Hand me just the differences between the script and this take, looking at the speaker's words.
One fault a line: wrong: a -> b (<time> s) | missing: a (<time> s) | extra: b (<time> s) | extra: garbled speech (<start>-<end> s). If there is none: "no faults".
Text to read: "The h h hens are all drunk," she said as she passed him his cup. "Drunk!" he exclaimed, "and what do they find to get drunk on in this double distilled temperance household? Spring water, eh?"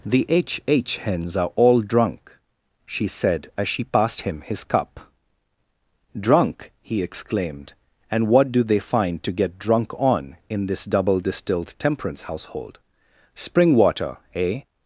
no faults